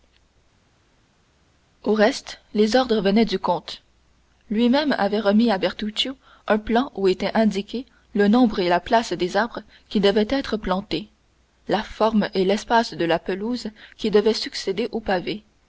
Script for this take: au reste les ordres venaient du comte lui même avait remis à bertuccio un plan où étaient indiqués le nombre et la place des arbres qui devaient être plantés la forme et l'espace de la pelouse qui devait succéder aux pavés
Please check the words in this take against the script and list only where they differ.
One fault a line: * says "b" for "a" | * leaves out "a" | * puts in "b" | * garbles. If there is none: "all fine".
all fine